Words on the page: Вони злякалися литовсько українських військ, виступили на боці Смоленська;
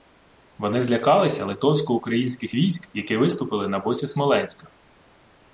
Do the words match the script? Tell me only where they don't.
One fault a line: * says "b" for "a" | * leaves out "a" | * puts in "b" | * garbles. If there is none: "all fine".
* puts in "які"